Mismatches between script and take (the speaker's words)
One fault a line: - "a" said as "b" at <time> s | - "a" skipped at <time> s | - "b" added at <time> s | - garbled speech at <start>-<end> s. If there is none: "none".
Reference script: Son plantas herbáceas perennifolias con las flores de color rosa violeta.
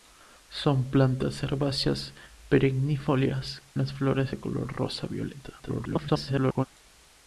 - "con" skipped at 3.6 s
- garbled speech at 5.6-6.7 s